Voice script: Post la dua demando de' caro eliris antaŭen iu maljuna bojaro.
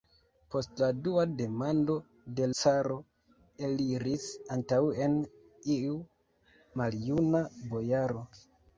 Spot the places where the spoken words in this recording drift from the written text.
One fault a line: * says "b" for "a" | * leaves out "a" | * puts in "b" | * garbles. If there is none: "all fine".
all fine